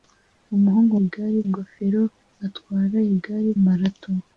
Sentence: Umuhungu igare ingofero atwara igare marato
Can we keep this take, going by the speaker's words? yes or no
yes